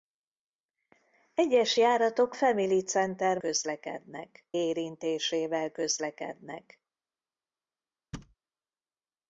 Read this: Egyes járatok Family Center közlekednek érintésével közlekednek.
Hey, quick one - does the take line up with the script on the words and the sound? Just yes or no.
no